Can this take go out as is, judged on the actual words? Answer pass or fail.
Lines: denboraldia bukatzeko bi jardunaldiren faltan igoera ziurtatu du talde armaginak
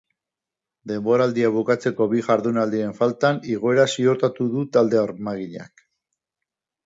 pass